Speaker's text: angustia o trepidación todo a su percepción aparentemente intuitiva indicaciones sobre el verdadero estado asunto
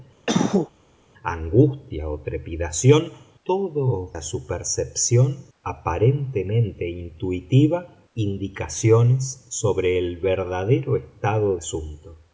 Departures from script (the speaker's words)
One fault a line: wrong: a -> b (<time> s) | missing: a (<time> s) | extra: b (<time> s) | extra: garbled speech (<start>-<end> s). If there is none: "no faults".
no faults